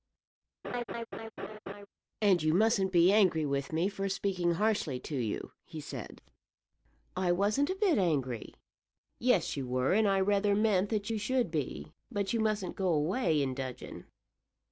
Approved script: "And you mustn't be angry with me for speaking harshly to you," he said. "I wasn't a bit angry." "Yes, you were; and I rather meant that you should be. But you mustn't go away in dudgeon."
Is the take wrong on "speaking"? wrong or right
right